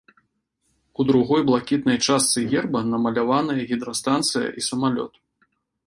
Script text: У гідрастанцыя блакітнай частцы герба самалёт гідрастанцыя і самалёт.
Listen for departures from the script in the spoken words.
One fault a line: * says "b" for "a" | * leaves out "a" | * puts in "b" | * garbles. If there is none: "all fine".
* says "другой" for "гідрастанцыя"
* says "намаляваныя" for "самалёт"